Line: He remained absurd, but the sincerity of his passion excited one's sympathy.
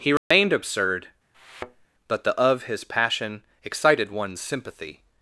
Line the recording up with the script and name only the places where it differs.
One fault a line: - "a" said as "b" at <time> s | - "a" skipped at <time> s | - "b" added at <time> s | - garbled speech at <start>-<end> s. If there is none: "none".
- "sincerity" skipped at 2.4 s